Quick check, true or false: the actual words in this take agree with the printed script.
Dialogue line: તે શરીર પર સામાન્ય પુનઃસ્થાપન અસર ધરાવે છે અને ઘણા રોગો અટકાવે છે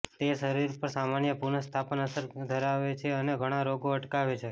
true